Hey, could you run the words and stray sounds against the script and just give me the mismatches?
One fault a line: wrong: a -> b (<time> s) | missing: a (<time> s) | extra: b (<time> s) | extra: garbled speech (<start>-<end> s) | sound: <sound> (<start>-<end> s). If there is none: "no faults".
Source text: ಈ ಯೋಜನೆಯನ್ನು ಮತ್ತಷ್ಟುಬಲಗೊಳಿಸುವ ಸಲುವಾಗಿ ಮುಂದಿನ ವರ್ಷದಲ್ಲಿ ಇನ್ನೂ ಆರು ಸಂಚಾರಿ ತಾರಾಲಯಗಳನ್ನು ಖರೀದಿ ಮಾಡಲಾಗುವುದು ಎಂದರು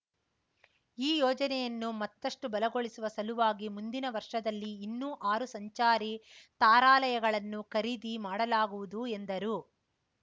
no faults